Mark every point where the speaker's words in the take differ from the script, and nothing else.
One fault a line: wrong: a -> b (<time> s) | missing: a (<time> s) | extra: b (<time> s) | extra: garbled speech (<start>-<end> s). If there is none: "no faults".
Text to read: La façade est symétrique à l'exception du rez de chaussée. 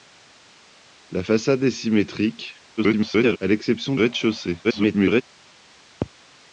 extra: garbled speech (2.8-3.4 s)
missing: du (3.9 s)
extra: garbled speech (4.6-5.2 s)